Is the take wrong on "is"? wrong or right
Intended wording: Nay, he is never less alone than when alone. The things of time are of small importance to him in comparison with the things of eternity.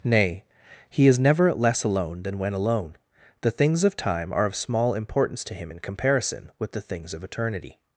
right